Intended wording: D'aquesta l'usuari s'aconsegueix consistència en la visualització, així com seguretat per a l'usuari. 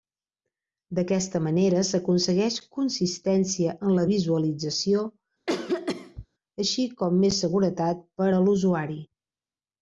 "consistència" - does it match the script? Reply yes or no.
yes